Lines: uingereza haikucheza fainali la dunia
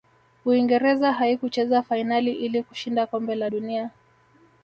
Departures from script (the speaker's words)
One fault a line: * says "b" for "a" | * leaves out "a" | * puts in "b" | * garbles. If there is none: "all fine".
* puts in "ili kushinda kombe"